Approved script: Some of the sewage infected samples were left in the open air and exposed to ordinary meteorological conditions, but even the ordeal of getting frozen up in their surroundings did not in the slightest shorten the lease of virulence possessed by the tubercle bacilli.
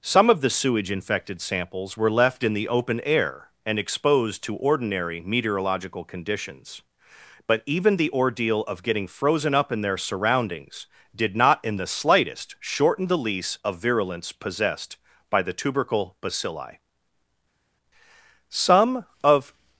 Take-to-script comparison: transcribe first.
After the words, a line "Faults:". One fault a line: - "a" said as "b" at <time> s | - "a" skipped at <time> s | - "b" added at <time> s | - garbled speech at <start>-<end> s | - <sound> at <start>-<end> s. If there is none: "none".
Some of the sewage infected samples were left in the open air and exposed to ordinary meteorological conditions, but even the ordeal of getting frozen up in their surroundings did not in the slightest shorten the lease of virulence possessed by the tubercle bacilli. Some of
Faults:
- "Some of" added at 18.5 s